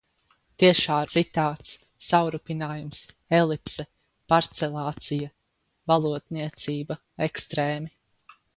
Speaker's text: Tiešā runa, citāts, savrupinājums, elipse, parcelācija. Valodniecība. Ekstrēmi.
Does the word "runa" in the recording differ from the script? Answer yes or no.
yes